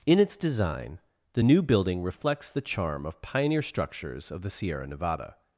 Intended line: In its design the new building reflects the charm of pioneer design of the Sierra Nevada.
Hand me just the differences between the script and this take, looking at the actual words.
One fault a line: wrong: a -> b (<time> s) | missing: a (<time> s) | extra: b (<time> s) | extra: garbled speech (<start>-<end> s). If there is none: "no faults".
wrong: design -> structures (3.6 s)